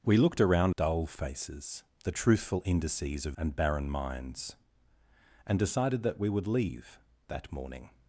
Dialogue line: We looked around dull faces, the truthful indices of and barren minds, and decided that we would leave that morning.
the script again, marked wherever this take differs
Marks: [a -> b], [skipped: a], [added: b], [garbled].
We looked around dull faces, the truthful indices of and barren minds, and decided that we would leave that morning.